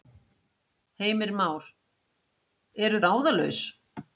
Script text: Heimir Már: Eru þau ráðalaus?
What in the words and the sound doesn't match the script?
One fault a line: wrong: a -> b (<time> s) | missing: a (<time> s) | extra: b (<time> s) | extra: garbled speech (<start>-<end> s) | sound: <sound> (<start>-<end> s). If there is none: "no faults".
missing: þau (3.0 s)